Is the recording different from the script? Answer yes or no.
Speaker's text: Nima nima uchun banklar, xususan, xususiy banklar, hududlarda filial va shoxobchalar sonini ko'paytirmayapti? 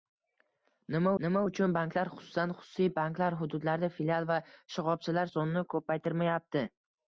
no